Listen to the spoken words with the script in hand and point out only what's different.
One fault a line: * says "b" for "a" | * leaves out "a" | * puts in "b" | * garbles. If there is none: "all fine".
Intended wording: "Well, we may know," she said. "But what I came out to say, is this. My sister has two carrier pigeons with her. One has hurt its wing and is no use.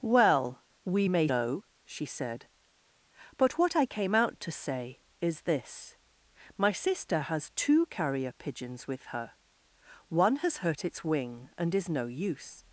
all fine